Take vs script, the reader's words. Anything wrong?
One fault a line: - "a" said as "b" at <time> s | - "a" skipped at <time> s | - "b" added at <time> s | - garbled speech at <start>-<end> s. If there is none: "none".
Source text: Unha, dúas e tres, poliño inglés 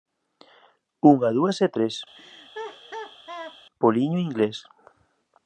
none